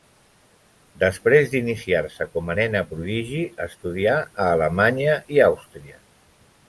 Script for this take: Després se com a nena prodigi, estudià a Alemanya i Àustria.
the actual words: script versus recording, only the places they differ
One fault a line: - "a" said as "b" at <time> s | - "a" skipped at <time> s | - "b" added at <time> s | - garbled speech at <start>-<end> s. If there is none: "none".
- "d'iniciar" added at 1.5 s